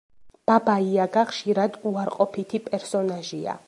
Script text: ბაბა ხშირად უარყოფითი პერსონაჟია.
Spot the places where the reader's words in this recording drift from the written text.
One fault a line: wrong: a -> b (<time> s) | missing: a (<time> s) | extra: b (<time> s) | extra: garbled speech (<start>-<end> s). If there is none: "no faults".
extra: იაგა (0.8 s)